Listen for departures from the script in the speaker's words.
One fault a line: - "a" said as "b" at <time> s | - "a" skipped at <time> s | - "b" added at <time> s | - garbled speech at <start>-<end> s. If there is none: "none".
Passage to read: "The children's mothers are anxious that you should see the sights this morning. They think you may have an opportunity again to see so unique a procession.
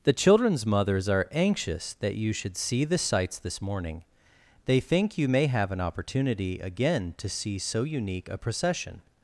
none